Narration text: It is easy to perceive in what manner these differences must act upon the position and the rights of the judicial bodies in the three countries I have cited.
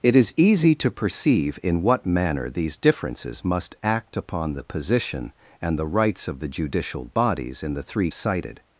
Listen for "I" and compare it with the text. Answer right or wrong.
wrong